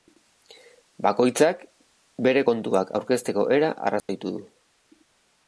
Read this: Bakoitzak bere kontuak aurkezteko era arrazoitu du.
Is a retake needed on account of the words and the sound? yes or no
yes